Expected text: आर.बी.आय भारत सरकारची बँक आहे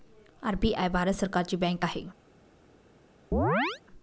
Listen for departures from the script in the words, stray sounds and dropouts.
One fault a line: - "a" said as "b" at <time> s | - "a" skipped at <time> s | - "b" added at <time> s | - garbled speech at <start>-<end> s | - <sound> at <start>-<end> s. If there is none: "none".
- chirp at 3.3-3.8 s